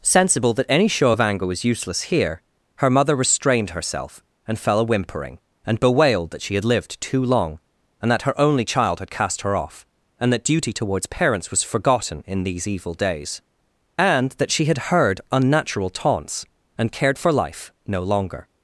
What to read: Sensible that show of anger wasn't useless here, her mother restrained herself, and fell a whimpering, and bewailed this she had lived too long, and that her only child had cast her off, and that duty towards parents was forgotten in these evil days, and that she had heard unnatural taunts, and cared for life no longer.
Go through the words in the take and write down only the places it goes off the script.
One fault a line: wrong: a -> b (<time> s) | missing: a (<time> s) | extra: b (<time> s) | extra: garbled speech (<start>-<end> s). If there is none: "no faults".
extra: any (0.7 s)
wrong: wasn't -> was (1.5 s)
wrong: this -> that (6.3 s)